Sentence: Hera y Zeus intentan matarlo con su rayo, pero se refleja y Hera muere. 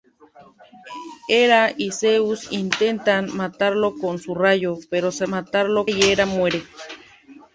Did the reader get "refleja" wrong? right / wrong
wrong